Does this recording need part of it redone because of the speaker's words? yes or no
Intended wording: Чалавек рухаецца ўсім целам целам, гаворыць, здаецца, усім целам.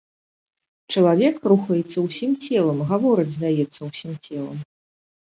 yes